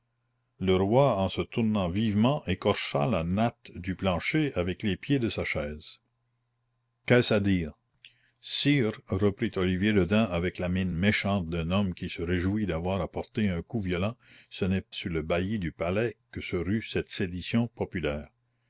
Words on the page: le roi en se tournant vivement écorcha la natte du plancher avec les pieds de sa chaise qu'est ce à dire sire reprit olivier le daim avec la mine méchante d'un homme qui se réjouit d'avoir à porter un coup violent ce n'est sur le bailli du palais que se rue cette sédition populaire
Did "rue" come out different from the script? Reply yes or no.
no